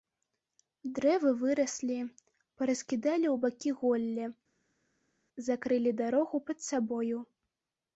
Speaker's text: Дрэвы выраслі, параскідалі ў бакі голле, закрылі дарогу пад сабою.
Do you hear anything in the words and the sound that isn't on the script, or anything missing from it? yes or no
no